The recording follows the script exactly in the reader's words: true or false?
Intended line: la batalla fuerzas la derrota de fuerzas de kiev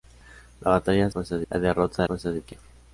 true